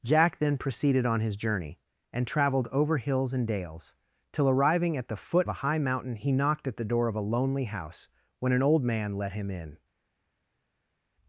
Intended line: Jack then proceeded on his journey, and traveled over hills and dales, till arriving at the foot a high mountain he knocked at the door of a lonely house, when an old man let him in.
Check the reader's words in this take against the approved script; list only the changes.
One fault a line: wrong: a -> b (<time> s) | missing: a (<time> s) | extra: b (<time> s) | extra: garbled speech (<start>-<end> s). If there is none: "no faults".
no faults